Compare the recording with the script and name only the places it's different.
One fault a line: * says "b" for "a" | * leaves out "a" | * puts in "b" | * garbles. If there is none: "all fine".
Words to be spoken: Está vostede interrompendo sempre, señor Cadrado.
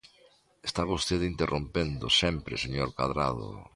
all fine